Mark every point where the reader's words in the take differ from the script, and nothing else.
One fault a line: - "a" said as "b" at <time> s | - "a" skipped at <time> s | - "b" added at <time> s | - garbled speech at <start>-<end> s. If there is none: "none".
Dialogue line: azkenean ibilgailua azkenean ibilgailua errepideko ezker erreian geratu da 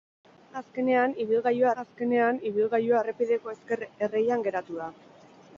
none